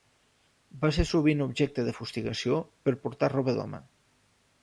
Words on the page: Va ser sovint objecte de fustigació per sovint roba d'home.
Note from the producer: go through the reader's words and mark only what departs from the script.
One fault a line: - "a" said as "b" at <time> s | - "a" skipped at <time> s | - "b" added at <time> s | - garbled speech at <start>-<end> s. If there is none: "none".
- "sovint" said as "portar" at 3.1 s